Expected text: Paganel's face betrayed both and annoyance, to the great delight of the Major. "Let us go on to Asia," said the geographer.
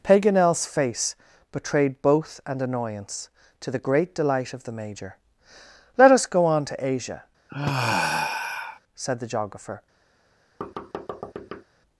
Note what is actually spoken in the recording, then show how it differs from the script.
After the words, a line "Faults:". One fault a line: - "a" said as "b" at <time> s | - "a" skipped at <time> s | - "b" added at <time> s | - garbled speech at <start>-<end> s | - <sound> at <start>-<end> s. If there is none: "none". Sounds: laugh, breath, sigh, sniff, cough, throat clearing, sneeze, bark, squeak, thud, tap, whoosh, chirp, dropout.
Paganel's face betrayed both and annoyance, to the great delight of the Major. "Let us go on to Asia," said the geographer.
Faults:
- sigh at 7.5-8.8 s
- thud at 10.6-11.6 s